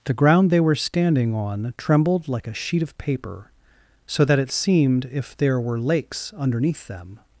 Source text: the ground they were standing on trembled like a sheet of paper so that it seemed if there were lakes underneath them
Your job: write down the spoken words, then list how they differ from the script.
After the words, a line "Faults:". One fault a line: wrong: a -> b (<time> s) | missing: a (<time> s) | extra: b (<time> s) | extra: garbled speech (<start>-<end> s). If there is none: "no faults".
the ground they were standing on trembled like a sheet of paper so that it seemed if there were lakes underneath them
Faults:
no faults